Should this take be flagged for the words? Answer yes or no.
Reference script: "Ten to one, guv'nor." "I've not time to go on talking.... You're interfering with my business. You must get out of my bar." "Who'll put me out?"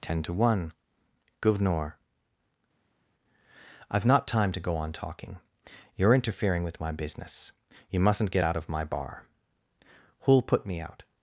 yes